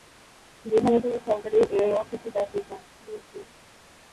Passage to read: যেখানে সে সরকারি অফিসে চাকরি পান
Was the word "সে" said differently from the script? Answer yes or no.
yes